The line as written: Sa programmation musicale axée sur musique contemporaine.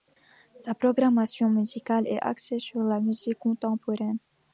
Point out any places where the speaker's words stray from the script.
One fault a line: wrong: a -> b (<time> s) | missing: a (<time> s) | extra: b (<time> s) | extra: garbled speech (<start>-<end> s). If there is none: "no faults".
extra: est (2.1 s)
extra: la (2.8 s)